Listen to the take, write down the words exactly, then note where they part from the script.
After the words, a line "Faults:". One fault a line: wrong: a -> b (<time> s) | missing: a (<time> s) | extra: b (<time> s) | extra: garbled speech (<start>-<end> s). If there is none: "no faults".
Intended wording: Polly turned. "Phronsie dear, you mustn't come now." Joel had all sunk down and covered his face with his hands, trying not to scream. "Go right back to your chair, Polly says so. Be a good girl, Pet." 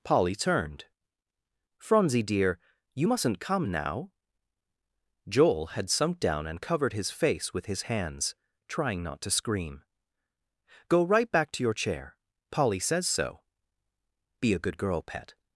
Polly turned. "Phronsie dear, you mustn't come now." Joel had sunk down and covered his face with his hands, trying not to scream. "Go right back to your chair, Polly says so. Be a good girl, Pet."
Faults:
missing: all (5.9 s)